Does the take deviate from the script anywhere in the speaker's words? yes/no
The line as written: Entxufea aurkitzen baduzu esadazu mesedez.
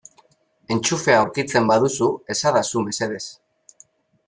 no